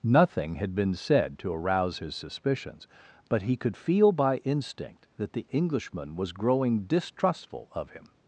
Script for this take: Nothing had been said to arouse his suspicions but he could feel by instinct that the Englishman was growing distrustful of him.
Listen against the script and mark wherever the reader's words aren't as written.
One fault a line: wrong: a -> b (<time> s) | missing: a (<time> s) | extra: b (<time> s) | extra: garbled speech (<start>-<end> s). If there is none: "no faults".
no faults